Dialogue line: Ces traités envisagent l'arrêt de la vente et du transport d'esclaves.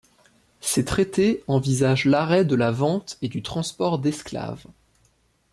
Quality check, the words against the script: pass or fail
pass